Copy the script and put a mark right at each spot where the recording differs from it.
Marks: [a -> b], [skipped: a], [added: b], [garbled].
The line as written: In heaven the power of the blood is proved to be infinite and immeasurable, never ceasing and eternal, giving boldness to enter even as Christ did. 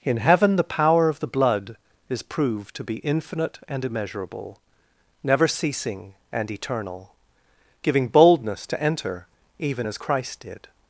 In heaven the power of the blood is proved to be infinite and immeasurable, never ceasing and eternal, giving boldness to enter even as Christ did.